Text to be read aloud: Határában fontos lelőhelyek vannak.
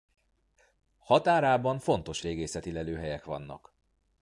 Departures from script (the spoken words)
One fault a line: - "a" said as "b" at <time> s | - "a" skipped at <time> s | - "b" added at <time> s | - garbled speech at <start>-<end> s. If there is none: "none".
- "régészeti" added at 2.2 s